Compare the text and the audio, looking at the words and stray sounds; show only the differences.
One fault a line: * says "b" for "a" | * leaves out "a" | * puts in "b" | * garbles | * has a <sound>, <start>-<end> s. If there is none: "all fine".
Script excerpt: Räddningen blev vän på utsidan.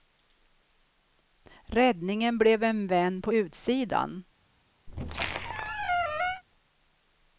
* puts in "en"
* has a squeak, 4.9-6.4 s